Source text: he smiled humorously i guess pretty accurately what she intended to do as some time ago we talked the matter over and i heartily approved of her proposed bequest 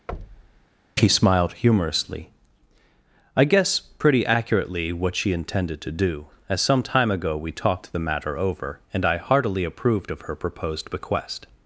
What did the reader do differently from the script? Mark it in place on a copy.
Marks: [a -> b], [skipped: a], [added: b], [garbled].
he smiled humorously i guess pretty accurately what she intended to do as some time ago we talked the matter over and i heartily approved of her proposed bequest